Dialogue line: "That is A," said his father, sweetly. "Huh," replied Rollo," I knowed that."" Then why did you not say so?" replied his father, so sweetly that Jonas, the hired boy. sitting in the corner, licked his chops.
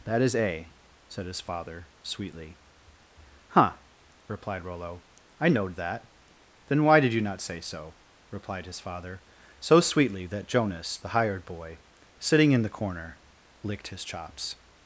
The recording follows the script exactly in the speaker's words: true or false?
true